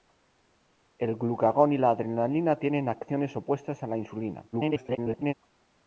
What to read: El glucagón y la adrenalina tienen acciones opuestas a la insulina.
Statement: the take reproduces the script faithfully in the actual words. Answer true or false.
false